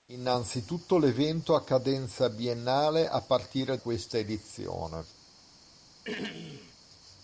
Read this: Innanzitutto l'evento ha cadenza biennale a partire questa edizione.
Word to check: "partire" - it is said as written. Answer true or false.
true